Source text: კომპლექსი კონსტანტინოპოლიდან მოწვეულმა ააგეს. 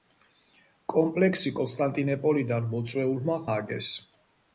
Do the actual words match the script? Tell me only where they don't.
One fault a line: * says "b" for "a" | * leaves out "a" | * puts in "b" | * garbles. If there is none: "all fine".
all fine